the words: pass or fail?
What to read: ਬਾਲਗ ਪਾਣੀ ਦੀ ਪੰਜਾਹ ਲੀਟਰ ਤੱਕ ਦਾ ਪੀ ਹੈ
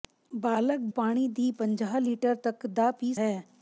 pass